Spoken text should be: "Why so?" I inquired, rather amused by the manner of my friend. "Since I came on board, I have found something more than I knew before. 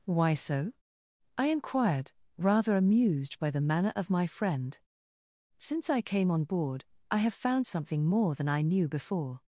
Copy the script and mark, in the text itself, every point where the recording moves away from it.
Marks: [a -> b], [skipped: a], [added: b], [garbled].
"Why so?" I inquired, rather amused by the manner of my friend. "Since I came on board, I have found something more than I knew before.